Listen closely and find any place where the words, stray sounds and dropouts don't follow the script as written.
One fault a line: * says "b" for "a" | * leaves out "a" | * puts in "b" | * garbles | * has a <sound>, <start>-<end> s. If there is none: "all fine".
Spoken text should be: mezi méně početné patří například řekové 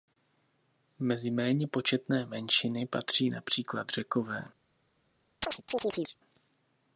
* puts in "menšiny"
* has a chirp, 5.4-6.2 s